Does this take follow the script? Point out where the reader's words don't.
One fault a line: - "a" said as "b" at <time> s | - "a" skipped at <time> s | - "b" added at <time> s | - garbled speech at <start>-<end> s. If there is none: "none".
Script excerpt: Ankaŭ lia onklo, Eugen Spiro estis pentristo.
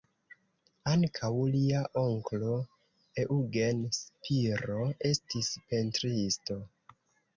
none